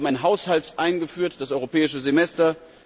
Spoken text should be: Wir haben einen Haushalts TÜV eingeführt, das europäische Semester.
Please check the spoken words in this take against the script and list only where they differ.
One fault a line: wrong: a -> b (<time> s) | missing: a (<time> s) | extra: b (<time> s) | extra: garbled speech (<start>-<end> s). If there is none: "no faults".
missing: TÜV (0.8 s)